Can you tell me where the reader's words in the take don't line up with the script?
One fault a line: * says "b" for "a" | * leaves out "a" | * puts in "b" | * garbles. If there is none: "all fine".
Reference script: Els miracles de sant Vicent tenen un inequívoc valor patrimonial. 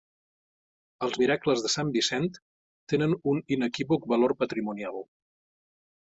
all fine